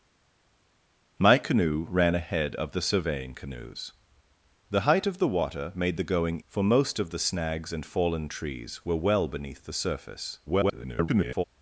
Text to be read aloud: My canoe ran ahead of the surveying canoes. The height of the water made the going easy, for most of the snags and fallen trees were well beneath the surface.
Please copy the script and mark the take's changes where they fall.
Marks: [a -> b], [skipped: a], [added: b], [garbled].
My canoe ran ahead of the surveying canoes. The height of the water made the going [skipped: easy,] for most of the snags and fallen trees were well beneath the surface. [garbled]